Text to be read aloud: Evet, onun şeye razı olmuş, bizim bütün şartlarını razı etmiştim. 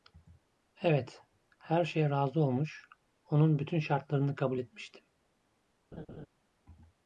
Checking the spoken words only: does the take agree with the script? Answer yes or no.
no